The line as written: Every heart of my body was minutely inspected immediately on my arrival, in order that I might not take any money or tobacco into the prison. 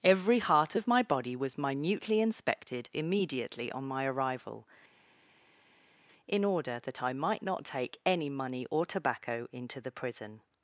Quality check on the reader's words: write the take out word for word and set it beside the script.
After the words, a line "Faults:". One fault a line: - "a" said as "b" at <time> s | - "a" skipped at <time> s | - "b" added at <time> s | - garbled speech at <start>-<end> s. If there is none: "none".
Every heart of my body was minutely inspected immediately on my arrival, in order that I might not take any money or tobacco into the prison.
Faults:
none